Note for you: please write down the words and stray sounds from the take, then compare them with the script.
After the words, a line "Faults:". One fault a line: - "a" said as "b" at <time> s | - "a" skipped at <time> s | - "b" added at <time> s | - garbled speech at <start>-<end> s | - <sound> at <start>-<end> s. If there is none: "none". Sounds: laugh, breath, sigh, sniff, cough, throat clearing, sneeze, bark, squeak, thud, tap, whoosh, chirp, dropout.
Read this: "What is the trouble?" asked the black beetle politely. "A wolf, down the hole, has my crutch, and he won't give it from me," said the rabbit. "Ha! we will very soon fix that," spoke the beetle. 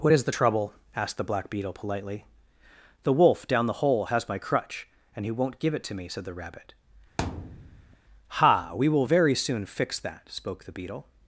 "What is the trouble?" asked the black beetle politely. "The wolf, down the hole, has my crutch, and he won't give it to me," said the rabbit. "Ha! we will very soon fix that," spoke the beetle.
Faults:
- "A" said as "The" at 3.0 s
- "from" said as "to" at 5.8 s
- thud at 7.2-8.0 s